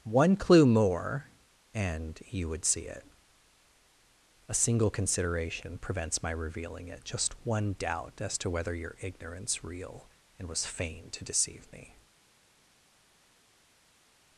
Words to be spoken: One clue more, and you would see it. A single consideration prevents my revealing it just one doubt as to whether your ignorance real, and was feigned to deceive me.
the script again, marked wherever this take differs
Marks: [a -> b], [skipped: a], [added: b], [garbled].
One clue more, and you would see it. A single consideration prevents my revealing it just one doubt as to whether your ignorance real, and was feigned to deceive me.